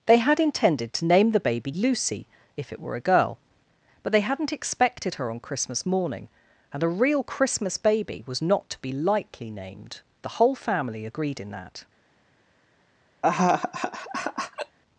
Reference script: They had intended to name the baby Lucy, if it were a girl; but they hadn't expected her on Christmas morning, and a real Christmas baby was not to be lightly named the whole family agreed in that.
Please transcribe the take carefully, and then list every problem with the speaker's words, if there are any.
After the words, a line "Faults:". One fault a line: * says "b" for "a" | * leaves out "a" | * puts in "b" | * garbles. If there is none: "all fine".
They had intended to name the baby Lucy, if it were a girl; but they hadn't expected her on Christmas morning, and a real Christmas baby was not to be lightly named the whole family agreed in that.
Faults:
all fine